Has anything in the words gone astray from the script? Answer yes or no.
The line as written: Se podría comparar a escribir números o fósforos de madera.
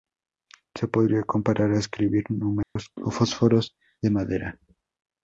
no